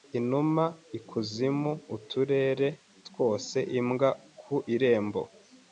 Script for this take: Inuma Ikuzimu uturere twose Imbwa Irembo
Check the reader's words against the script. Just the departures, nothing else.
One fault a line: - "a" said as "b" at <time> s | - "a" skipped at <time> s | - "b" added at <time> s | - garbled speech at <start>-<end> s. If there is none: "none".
- "ku" added at 4.4 s